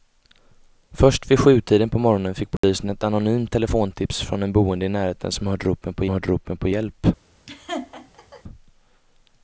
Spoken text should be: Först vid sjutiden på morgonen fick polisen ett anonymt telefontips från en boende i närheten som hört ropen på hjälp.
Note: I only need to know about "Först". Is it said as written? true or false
true